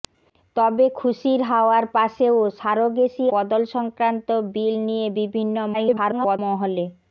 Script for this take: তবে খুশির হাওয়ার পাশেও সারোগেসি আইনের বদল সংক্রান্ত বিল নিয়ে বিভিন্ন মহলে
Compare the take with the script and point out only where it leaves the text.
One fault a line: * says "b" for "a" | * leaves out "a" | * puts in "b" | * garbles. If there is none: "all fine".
* leaves out "আইনের"
* garbles